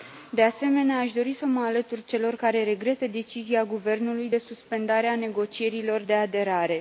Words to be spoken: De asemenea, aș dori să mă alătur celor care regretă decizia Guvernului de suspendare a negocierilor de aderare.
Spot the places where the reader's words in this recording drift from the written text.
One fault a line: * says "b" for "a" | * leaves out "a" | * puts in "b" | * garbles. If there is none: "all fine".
all fine